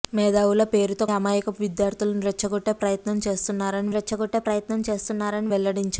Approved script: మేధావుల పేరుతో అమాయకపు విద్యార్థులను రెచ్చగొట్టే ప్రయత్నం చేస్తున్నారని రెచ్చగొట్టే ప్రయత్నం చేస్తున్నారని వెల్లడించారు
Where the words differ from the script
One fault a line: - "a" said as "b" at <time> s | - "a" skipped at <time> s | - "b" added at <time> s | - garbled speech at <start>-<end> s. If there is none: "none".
none